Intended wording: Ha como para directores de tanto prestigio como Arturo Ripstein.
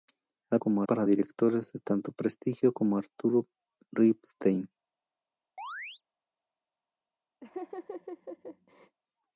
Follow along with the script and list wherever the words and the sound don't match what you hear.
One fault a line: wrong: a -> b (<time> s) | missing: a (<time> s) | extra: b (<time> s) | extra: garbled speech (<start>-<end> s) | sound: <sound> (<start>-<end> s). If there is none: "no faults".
sound: chirp (5.6-6.0 s)
sound: laugh (7.4-9.0 s)